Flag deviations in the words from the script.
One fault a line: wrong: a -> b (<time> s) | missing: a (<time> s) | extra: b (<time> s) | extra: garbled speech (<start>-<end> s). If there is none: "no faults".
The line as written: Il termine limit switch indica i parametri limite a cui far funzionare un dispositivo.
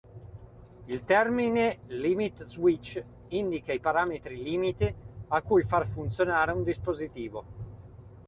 no faults